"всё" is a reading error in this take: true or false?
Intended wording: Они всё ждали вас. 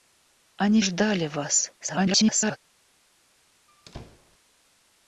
true